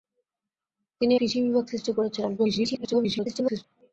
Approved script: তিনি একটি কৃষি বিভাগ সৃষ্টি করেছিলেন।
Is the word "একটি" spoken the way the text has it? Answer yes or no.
no